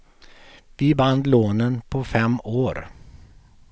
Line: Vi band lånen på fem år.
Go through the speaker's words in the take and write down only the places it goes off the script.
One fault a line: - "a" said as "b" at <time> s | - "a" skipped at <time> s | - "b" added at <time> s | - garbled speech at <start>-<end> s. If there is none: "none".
none